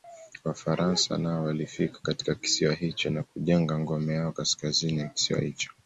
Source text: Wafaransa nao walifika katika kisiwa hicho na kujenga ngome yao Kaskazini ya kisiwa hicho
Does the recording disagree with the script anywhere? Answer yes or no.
no